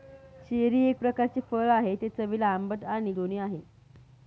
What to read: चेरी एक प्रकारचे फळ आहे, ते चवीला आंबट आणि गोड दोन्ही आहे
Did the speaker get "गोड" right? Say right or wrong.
wrong